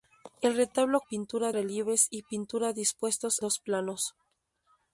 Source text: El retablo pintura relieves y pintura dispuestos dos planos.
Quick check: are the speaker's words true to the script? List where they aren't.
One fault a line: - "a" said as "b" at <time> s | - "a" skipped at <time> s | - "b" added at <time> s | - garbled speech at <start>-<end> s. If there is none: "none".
none